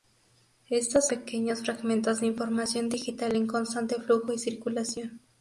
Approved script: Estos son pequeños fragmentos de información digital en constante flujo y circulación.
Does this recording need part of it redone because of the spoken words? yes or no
yes